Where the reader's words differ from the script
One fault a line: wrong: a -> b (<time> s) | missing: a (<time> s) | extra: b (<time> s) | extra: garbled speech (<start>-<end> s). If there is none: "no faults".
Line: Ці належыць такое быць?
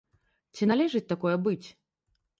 no faults